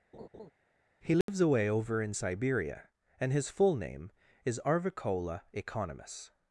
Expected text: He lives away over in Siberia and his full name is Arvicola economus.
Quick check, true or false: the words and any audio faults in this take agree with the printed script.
false